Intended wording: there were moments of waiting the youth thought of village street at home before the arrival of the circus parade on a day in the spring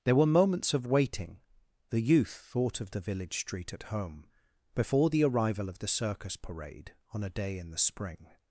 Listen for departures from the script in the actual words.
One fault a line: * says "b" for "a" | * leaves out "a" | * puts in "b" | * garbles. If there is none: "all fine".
* puts in "the"